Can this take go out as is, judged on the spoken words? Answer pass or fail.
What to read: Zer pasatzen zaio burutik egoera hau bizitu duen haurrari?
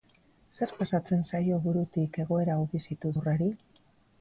fail